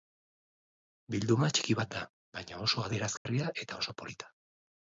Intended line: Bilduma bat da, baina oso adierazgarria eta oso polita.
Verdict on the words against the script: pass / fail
fail